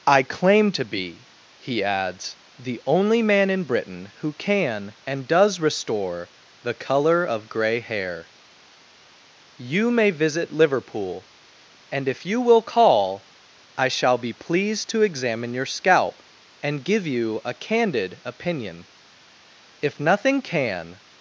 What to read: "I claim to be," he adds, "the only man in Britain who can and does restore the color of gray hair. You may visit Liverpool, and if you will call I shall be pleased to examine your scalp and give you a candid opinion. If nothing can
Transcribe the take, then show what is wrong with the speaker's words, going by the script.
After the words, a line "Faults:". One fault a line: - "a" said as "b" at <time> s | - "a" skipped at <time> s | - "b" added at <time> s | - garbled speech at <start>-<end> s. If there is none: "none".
"I claim to be," he adds, "the only man in Britain who can and does restore the color of gray hair. You may visit Liverpool, and if you will call I shall be pleased to examine your scalp and give you a candid opinion. If nothing can
Faults:
none